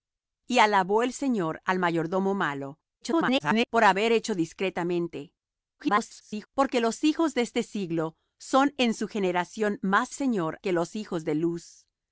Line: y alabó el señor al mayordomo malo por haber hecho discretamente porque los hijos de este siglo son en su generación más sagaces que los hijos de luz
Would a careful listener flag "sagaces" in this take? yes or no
yes